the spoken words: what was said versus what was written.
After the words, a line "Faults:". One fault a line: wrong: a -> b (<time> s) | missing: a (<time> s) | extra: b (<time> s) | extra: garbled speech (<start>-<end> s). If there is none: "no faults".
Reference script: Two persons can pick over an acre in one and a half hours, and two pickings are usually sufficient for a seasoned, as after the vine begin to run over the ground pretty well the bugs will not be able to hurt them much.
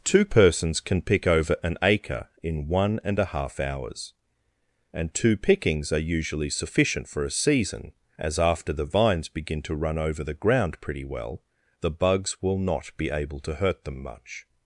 Two persons can pick over an acre in one and a half hours, and two pickings are usually sufficient for a season, as after the vines begin to run over the ground pretty well the bugs will not be able to hurt them much.
Faults:
wrong: seasoned -> season (7.3 s)
wrong: vine -> vines (8.8 s)